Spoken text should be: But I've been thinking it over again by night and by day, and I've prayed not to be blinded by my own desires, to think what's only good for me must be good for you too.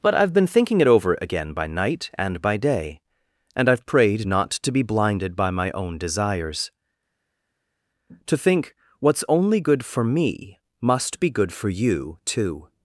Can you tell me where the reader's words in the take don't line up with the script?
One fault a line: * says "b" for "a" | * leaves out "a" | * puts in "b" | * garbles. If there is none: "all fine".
all fine